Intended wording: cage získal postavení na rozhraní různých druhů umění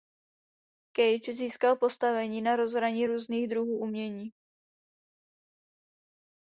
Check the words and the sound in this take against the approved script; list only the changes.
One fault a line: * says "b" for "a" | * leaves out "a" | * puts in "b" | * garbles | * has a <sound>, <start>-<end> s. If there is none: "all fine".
all fine